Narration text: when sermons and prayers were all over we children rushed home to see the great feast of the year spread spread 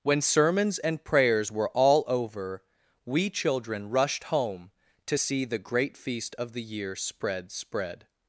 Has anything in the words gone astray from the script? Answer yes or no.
no